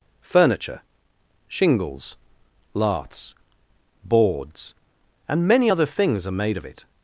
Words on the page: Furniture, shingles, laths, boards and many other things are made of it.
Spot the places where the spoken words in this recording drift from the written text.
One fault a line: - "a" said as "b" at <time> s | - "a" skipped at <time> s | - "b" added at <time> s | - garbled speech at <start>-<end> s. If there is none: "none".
none